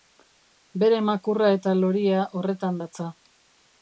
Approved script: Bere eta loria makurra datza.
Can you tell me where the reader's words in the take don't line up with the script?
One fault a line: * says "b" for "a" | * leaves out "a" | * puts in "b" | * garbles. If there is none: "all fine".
* puts in "makurra"
* says "horretan" for "makurra"